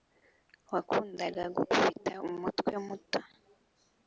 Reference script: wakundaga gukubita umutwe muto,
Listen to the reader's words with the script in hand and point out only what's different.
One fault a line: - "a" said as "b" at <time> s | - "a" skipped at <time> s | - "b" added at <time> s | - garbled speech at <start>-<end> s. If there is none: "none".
none